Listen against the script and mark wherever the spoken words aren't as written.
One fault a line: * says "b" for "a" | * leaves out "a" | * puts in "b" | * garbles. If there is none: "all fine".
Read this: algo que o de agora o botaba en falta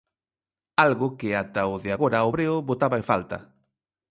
* puts in "ata"
* puts in "breo"